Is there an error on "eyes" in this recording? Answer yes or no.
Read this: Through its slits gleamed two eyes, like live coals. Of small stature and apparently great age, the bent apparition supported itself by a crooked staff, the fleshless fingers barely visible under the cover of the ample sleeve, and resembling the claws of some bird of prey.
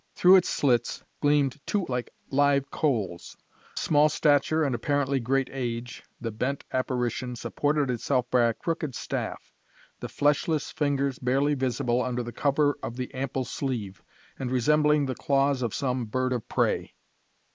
yes